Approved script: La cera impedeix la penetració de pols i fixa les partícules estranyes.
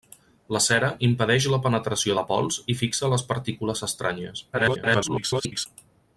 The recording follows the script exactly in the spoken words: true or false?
false